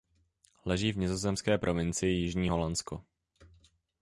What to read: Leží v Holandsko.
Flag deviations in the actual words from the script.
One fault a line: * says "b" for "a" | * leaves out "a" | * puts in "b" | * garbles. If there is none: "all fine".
* puts in "nizozemské provincii Jižní"